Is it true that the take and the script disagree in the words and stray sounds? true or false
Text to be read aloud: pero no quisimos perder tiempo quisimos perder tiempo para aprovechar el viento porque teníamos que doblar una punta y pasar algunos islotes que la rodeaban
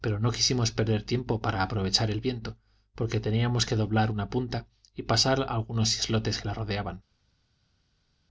true